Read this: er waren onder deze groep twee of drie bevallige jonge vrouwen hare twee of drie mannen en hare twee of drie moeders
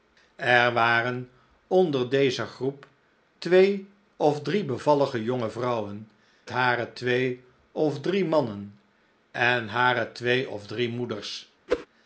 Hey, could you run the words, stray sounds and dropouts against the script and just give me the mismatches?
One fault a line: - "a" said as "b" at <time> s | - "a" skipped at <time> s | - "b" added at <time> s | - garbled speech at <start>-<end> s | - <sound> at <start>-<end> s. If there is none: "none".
- whoosh at 11.7-11.9 s